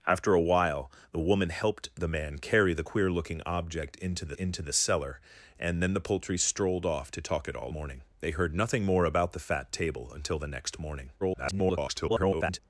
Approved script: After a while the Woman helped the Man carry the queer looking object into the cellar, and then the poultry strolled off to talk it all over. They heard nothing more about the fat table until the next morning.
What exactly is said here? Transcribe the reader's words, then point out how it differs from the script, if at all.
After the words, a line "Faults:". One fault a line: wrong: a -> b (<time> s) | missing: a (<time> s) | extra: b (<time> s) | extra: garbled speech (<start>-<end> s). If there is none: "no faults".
After a while the Woman helped the Man carry the queer looking object into the into the cellar, and then the poultry strolled off to talk it all morning. They heard nothing more about the fat table until the next morning. [garbled]
Faults:
extra: into the (4.3 s)
wrong: over -> morning (7.7 s)
extra: garbled speech (11.2-12.6 s)